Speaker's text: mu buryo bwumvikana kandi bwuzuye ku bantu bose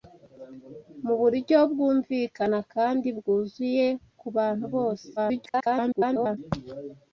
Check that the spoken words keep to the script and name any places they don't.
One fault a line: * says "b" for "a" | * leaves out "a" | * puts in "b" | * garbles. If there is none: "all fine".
* garbles